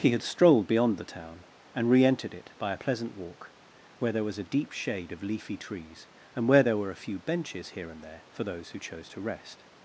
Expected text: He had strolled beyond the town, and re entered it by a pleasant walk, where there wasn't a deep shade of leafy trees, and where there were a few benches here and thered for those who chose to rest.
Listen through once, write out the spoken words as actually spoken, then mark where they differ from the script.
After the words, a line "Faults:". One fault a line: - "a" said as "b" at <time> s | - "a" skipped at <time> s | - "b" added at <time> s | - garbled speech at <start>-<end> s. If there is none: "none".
He had strolled beyond the town, and re entered it by a pleasant walk, where there was a deep shade of leafy trees, and where there were a few benches here and there for those who chose to rest.
Faults:
- "wasn't" said as "was" at 4.2 s
- "thered" said as "there" at 8.0 s